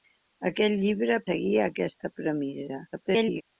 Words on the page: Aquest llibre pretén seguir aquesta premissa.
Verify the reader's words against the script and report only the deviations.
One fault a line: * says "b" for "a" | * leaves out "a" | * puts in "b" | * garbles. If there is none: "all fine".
* leaves out "pretén"
* garbles